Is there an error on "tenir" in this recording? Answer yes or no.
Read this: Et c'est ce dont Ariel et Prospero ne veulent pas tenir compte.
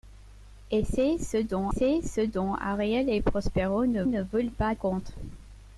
yes